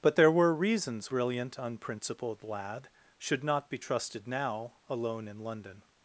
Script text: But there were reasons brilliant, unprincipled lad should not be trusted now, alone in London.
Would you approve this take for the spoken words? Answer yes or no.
yes